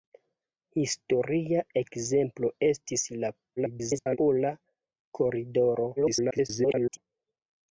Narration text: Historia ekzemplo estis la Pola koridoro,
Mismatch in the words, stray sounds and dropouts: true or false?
true